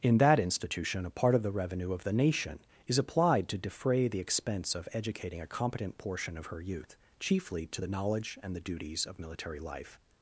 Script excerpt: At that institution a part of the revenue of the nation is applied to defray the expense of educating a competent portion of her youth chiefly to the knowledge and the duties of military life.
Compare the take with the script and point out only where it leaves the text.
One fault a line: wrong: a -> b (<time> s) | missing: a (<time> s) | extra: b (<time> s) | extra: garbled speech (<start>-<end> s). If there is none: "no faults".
wrong: At -> In (0.0 s)